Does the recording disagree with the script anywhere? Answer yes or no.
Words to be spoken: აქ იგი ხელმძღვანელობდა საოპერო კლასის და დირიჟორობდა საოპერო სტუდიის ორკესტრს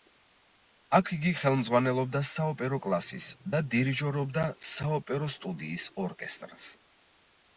no